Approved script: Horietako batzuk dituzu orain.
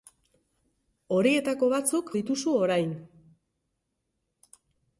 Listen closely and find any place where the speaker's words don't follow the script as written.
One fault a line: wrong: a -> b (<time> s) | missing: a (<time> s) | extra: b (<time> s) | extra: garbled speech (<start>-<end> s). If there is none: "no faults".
no faults